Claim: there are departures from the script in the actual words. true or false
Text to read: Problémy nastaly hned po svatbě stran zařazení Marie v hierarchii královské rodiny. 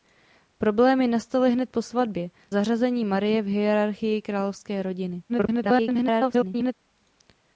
true